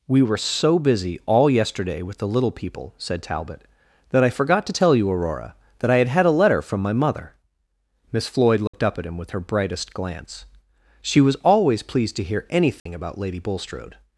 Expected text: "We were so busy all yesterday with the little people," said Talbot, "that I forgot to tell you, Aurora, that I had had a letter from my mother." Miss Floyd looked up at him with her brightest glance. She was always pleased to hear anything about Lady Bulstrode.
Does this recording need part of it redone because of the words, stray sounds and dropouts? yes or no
yes